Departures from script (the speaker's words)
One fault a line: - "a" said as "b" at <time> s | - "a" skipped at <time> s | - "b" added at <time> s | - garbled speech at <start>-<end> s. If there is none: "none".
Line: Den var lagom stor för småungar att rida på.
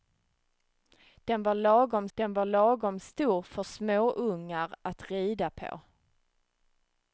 - "den var lagom" added at 2.1 s